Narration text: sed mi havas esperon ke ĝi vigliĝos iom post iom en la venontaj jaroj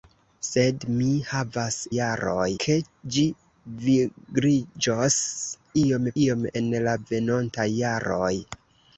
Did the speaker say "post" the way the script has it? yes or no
no